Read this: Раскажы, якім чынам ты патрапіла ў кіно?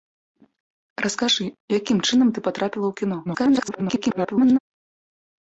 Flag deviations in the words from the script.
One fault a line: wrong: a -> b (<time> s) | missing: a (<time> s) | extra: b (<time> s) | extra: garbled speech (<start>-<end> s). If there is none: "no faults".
extra: garbled speech (3.2-4.6 s)